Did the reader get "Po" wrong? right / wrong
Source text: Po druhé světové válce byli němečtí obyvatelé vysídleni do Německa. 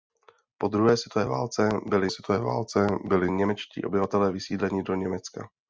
right